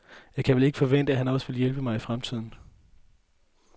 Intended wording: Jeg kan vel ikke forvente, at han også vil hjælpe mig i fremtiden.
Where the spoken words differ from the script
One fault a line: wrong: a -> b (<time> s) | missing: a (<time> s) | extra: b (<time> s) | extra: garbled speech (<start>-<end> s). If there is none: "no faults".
no faults